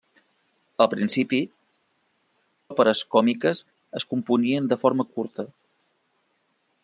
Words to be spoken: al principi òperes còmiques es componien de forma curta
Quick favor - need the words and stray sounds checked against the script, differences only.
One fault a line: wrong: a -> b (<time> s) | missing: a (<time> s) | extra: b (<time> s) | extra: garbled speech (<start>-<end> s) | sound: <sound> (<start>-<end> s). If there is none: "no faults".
no faults